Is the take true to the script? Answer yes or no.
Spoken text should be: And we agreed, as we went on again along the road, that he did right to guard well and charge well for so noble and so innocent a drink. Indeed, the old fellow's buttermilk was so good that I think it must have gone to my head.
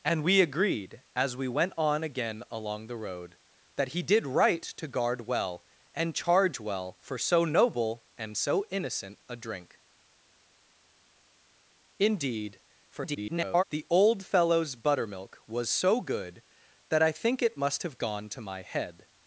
no